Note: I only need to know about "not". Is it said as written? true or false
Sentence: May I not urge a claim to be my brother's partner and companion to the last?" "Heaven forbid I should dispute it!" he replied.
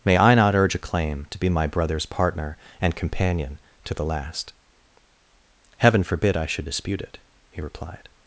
true